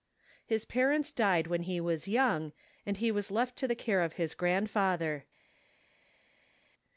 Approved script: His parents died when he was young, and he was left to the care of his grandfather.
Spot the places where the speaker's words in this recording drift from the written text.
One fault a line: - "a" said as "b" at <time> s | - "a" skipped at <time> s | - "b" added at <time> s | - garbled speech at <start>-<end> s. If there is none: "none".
none